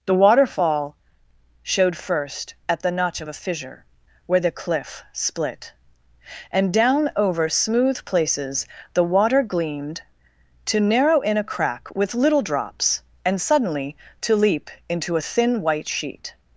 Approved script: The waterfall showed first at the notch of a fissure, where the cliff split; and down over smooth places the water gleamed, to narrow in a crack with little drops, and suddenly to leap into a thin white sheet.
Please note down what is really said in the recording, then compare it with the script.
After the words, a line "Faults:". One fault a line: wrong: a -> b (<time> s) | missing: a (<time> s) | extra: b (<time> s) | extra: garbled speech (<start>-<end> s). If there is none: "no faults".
The waterfall showed first at the notch of a fissure, where the cliff split; and down over smooth places the water gleamed, to narrow in a crack with little drops, and suddenly to leap into a thin white sheet.
Faults:
no faults